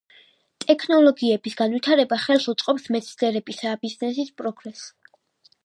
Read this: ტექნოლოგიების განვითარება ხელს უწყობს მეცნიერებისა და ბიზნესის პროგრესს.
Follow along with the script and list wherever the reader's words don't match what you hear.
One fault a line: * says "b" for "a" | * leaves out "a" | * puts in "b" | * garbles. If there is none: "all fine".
all fine